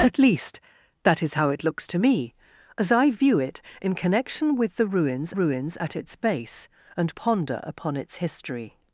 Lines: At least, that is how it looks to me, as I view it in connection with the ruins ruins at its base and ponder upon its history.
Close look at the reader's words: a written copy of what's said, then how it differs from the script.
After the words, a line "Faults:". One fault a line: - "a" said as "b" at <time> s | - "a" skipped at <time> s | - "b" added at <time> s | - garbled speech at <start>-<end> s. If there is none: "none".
At least, that is how it looks to me, as I view it in connection with the ruins ruins at its base and ponder upon its history.
Faults:
none